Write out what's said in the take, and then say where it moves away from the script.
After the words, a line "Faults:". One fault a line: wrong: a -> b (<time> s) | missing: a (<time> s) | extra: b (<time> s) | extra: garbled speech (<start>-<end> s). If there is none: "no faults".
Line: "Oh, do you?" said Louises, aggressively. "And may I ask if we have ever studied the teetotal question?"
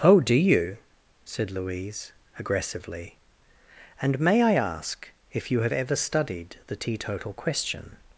"Oh, do you?" said Louise, aggressively. "And may I ask if you have ever studied the teetotal question?"
Faults:
wrong: Louises -> Louise (1.5 s)
wrong: we -> you (5.5 s)